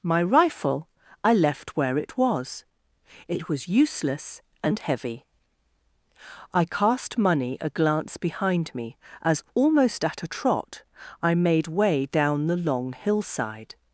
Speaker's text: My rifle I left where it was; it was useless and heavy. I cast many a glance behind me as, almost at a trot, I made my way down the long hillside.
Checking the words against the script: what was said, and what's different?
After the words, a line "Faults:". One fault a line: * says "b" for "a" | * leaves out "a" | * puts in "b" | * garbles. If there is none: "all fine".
My rifle I left where it was; it was useless and heavy. I cast money a glance behind me as, almost at a trot, I made way down the long hillside.
Faults:
* says "money" for "many"
* leaves out "my"